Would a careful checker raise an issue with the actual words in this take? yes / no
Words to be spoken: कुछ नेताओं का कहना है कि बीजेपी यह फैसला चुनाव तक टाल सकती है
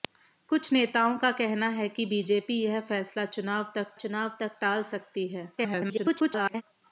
yes